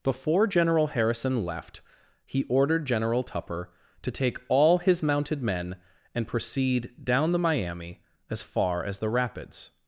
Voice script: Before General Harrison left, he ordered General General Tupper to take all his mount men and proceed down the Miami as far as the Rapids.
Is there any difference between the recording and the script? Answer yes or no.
yes